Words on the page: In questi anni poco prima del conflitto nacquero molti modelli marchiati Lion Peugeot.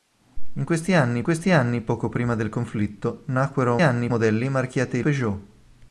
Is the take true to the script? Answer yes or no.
no